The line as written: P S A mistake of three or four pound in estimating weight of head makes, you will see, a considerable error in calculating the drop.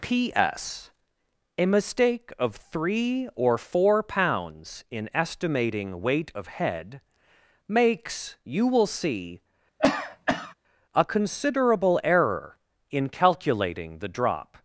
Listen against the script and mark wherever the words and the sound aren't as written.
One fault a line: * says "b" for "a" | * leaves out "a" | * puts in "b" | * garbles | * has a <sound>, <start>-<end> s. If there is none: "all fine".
* says "pounds" for "pound"
* has a cough, 9.8-10.5 s